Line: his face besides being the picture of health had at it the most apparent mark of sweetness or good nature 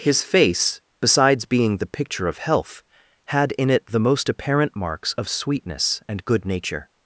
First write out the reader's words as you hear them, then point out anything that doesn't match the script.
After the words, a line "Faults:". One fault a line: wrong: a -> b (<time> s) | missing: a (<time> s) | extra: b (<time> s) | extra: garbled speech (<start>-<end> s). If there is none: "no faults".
his face besides being the picture of health had in it the most apparent marks of sweetness and good nature
Faults:
wrong: at -> in (3.5 s)
wrong: mark -> marks (4.8 s)
wrong: or -> and (6.1 s)